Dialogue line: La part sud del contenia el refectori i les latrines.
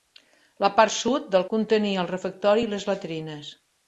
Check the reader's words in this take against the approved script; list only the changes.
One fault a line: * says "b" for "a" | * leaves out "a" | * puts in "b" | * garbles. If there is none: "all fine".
all fine